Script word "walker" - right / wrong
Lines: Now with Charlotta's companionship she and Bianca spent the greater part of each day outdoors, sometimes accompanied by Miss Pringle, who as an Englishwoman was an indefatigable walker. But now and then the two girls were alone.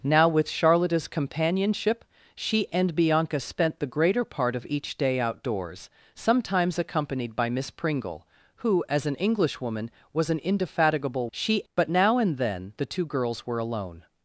wrong